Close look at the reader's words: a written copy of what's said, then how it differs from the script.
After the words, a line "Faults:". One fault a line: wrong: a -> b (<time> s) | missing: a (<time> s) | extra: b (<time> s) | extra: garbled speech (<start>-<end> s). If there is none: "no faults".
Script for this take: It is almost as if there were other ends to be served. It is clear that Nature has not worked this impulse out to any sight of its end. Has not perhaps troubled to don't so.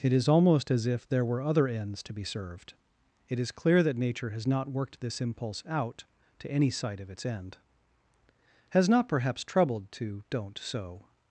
It is almost as if there were other ends to be served. It is clear that Nature has not worked this impulse out to any sight of its end. Has not perhaps troubled to don't so.
Faults:
no faults